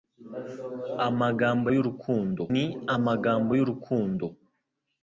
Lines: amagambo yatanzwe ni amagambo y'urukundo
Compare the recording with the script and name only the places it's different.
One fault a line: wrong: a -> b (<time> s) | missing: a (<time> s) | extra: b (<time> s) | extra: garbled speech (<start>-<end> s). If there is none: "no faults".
wrong: yatanzwe -> y'urukundo (1.7 s)